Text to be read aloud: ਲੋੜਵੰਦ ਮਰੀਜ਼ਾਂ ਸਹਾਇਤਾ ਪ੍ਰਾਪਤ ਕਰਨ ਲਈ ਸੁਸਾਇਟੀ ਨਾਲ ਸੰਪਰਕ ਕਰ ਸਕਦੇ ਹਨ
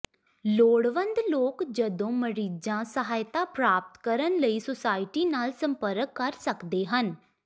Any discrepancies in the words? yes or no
yes